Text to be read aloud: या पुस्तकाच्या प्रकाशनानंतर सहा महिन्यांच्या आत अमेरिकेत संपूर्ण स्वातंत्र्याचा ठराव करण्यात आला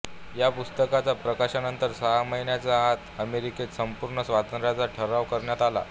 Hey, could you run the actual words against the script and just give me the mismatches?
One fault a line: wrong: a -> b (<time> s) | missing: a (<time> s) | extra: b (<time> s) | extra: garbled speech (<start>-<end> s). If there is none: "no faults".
no faults